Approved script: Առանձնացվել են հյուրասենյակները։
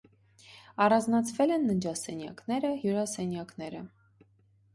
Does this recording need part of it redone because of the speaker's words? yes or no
yes